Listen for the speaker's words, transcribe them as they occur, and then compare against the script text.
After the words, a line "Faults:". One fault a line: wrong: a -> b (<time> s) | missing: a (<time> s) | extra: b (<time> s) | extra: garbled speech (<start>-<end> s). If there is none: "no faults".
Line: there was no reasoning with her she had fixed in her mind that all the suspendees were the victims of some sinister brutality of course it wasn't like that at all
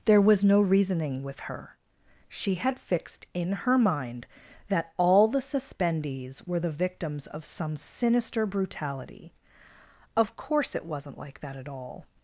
there was no reasoning with her she had fixed in her mind that all the suspendees were the victims of some sinister brutality of course it wasn't like that at all
Faults:
no faults